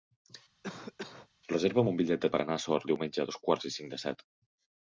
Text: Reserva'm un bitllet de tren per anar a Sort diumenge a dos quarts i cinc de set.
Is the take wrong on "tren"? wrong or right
wrong